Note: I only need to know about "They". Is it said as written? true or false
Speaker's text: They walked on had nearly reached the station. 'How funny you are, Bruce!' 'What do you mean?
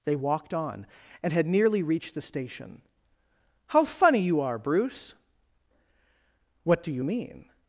true